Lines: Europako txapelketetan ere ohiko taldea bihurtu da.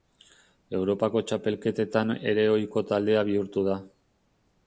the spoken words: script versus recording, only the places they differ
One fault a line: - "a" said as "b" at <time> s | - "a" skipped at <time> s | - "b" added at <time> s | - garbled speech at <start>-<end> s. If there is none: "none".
none